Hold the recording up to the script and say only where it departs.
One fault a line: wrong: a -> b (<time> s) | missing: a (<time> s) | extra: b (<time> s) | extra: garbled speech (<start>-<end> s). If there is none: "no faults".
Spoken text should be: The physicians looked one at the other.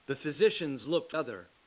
missing: one at the (1.1 s)